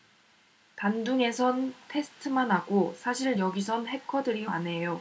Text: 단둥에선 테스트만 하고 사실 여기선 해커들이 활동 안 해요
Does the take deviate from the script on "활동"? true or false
true